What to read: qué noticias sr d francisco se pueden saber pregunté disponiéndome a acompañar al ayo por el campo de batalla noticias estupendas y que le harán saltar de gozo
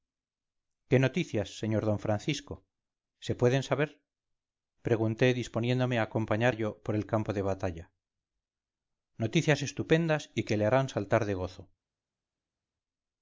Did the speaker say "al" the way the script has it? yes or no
no